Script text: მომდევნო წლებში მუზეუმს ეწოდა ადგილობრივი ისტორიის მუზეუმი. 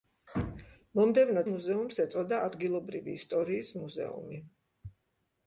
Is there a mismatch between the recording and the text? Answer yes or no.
yes